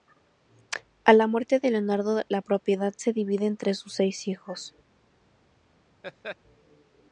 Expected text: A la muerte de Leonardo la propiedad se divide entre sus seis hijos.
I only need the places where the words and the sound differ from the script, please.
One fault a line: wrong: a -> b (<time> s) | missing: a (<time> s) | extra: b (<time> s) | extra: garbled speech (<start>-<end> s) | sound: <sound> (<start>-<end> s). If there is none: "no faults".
sound: laugh (6.0-6.4 s)